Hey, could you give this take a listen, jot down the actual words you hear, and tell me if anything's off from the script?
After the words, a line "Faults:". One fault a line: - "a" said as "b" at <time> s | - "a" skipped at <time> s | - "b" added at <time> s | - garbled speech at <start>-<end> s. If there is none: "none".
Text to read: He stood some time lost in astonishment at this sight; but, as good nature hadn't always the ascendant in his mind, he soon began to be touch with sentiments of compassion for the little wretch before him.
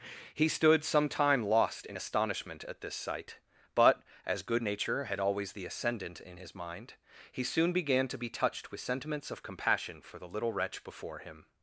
He stood some time lost in astonishment at this sight; but, as good nature had always the ascendant in his mind, he soon began to be touched with sentiments of compassion for the little wretch before him.
Faults:
- "hadn't" said as "had" at 5.0 s
- "touch" said as "touched" at 8.3 s